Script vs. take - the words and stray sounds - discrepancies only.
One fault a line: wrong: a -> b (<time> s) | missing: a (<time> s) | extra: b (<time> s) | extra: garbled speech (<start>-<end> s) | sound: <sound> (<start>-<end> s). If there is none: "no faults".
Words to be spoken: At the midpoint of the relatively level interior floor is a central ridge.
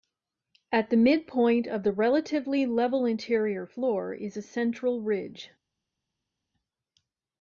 no faults